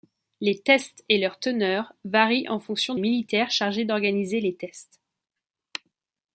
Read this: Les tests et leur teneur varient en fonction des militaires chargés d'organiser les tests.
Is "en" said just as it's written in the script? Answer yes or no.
yes